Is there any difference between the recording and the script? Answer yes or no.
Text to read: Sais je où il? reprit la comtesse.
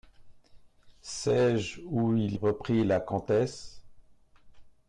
no